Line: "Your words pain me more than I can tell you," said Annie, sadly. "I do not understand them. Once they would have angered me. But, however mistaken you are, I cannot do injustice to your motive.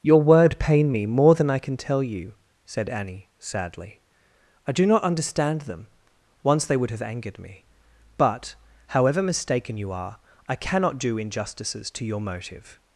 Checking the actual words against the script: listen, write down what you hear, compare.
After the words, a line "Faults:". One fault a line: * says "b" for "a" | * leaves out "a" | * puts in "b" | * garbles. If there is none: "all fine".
"Your word pain me more than I can tell you," said Annie, sadly. "I do not understand them. Once they would have angered me. But, however mistaken you are, I cannot do injustices to your motive.
Faults:
* says "word" for "words"
* says "injustices" for "injustice"